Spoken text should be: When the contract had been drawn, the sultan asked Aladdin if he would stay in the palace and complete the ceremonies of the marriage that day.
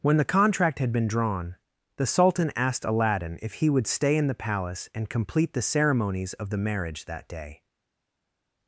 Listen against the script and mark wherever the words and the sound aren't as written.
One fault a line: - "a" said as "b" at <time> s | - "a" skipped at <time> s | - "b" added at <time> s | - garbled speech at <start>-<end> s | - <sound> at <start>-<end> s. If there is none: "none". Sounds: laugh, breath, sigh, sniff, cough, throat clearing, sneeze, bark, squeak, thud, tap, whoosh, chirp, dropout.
none